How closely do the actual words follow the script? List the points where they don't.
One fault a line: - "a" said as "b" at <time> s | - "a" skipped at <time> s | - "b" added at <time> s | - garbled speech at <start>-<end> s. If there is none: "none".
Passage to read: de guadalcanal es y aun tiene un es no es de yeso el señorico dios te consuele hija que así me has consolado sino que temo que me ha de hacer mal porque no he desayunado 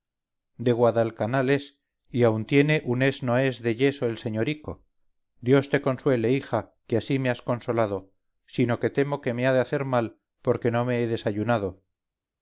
- "me" added at 10.8 s